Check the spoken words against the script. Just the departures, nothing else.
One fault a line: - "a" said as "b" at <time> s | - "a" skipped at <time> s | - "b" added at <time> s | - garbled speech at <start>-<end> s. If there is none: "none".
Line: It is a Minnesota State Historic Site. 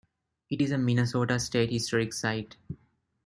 none